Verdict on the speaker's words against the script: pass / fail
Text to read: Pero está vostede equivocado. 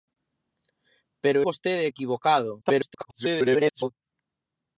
fail